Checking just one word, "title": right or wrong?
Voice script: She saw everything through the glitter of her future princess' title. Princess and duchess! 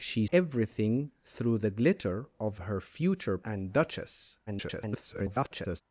wrong